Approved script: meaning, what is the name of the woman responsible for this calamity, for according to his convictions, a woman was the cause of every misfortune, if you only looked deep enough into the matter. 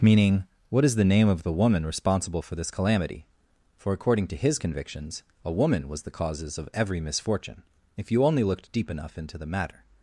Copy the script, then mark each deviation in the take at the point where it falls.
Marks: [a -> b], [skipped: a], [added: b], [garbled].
meaning, what is the name of the woman responsible for this calamity, for according to his convictions, a woman was the [cause -> causes] of every misfortune, if you only looked deep enough into the matter.